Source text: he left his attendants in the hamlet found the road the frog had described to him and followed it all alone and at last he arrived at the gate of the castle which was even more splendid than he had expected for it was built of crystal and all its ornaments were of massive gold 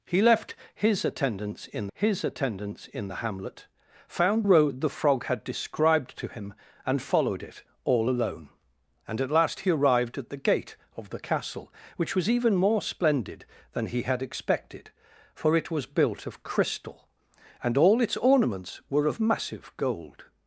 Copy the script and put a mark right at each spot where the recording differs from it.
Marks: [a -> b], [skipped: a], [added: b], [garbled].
he left his attendants in [added: his attendants in] the hamlet found [skipped: the] road the frog had described to him and followed it all alone and at last he arrived at the gate of the castle which was even more splendid than he had expected for it was built of crystal and all its ornaments were of massive gold